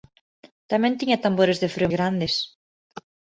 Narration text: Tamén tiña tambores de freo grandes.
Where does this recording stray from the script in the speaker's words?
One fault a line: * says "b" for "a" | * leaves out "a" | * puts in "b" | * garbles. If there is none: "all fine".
all fine